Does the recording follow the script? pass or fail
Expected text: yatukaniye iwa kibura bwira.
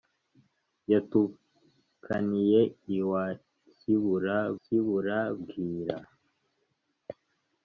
fail